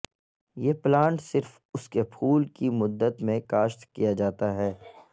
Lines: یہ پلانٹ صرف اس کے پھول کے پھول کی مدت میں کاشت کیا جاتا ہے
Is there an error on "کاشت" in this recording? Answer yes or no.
no